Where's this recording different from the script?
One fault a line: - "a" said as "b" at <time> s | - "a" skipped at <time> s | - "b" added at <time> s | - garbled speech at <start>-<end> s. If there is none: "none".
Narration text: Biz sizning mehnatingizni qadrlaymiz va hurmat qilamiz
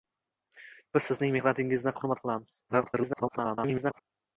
- "qadrlaymiz" skipped at 2.0 s
- garbled speech at 2.7-4.0 s